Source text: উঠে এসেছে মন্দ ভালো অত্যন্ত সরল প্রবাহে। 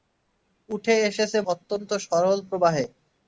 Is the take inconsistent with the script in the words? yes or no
yes